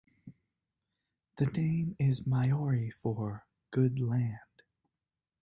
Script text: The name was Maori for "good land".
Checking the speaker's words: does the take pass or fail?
fail